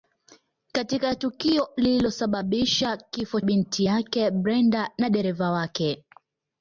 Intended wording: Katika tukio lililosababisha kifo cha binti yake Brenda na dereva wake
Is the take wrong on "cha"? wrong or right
wrong